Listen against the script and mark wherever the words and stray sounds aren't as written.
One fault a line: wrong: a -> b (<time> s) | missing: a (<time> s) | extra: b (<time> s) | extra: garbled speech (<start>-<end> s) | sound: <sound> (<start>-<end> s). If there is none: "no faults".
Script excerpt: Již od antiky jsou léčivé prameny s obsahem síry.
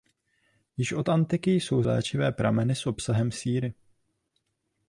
no faults